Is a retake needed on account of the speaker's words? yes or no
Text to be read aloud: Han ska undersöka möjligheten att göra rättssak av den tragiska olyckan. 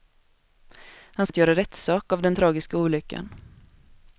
yes